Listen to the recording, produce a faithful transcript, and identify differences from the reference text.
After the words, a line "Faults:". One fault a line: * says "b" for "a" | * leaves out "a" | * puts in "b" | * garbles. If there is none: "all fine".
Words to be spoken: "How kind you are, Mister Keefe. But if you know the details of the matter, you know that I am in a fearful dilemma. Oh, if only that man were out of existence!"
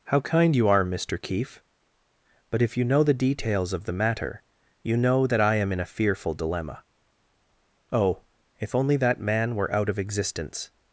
"How kind you are, Mister Keefe. But if you know the details of the matter, you know that I am in a fearful dilemma. Oh, if only that man were out of existence!"
Faults:
all fine